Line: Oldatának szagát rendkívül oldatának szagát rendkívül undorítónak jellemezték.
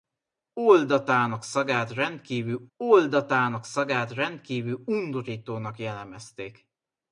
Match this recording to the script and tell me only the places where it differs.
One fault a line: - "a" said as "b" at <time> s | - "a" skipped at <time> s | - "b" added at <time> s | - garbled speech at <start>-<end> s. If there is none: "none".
none